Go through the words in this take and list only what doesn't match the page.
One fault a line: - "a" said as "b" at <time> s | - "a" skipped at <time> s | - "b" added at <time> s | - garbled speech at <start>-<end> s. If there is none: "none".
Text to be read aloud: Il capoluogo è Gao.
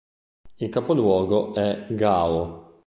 none